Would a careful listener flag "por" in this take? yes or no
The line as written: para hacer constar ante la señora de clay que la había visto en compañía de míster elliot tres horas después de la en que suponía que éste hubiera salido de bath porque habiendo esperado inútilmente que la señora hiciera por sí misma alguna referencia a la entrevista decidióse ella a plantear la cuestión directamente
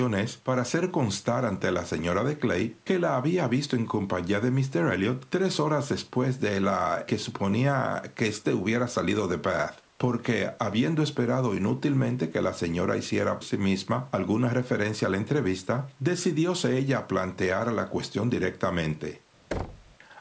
yes